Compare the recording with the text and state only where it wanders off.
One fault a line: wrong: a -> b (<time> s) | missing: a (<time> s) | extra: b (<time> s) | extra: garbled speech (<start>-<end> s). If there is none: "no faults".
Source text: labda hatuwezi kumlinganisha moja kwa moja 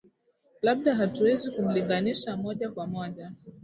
no faults